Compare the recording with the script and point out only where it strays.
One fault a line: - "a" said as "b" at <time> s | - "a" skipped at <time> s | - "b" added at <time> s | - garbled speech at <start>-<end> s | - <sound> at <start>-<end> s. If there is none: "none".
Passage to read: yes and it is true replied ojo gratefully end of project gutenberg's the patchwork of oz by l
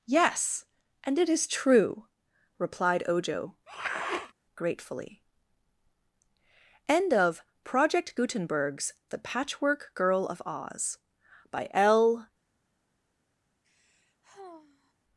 - sniff at 3.7-4.3 s
- "girl" added at 9.9 s
- sigh at 13.6-14.9 s